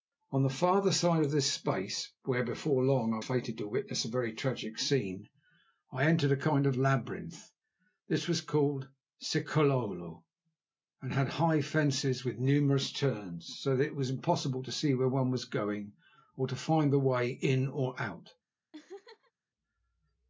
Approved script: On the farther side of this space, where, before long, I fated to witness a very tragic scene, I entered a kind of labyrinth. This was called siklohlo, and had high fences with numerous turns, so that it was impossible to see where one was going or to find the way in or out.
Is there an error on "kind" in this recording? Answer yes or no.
no